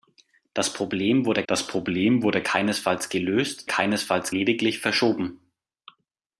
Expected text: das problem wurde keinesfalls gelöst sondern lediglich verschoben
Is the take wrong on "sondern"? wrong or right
wrong